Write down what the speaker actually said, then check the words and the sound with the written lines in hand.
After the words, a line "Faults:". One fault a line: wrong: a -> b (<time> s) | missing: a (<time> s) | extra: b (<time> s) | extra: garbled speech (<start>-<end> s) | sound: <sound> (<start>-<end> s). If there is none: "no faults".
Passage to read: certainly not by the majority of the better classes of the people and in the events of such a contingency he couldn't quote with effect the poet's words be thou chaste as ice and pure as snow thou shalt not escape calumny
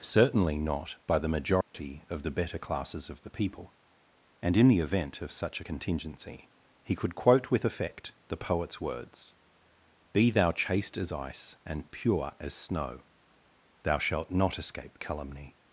certainly not by the majority of the better classes of the people and in the event of such a contingency he could quote with effect the poet's words be thou chaste as ice and pure as snow thou shalt not escape calumny
Faults:
sound: dropout (1.6-1.7 s)
wrong: events -> event (4.8 s)
wrong: couldn't -> could (6.9 s)